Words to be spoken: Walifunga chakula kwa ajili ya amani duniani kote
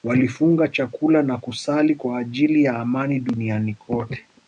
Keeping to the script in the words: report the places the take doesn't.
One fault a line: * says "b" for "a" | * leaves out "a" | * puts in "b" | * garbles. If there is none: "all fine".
* puts in "na kusali"